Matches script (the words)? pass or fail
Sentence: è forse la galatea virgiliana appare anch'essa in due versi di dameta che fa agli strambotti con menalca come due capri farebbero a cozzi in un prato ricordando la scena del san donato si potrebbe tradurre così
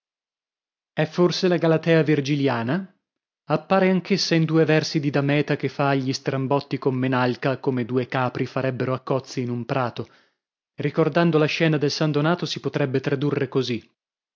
pass